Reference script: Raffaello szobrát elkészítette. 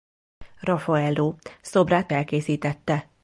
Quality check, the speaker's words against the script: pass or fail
pass